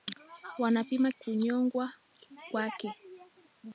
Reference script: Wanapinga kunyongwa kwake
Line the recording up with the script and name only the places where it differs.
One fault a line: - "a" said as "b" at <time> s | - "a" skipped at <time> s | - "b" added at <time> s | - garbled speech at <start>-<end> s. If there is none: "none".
none